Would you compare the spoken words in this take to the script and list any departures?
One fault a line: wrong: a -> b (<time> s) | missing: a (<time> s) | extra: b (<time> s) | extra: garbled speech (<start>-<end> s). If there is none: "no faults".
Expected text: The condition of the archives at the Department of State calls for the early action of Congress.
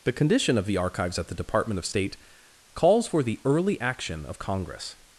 no faults